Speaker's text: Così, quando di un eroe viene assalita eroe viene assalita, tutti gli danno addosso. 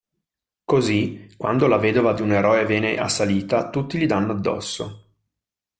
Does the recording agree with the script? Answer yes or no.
no